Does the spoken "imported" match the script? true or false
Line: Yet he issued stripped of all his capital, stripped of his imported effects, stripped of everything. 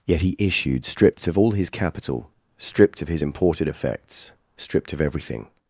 true